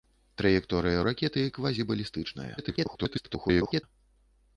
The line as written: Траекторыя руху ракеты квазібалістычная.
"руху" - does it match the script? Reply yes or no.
no